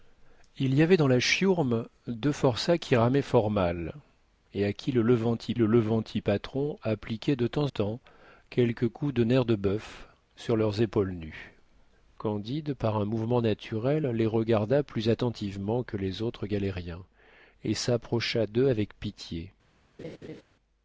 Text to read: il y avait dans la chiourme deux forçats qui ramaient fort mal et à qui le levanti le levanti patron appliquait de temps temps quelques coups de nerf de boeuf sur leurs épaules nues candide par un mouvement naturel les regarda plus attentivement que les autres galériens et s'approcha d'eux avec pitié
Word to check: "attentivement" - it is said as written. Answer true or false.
true